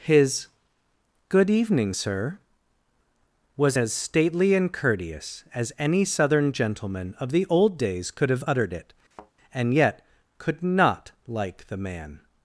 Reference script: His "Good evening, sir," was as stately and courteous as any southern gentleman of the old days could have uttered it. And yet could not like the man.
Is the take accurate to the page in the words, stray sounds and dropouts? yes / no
no